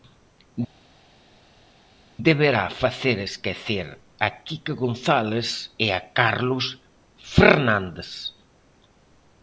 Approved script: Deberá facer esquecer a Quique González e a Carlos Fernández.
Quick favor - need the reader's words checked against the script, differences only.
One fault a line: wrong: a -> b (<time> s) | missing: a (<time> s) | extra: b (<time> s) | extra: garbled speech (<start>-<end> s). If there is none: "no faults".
no faults